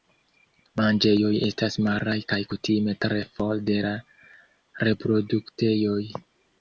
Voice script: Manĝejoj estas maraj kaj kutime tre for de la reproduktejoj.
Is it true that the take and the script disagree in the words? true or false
false